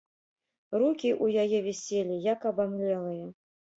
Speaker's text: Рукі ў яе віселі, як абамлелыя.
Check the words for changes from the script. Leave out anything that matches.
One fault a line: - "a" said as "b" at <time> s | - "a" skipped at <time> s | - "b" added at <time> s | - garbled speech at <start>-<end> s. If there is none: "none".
none